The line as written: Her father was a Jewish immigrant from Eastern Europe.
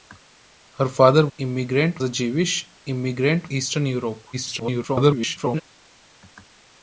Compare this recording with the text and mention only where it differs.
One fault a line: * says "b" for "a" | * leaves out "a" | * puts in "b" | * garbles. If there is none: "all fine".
* says "immigrant" for "was"
* leaves out "from"
* garbles